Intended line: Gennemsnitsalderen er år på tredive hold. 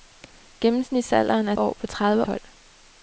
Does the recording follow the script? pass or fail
pass